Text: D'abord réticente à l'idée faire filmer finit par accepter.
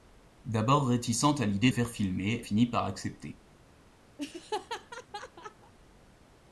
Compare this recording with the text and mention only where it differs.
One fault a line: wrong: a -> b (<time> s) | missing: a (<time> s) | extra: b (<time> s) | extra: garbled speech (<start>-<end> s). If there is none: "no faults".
no faults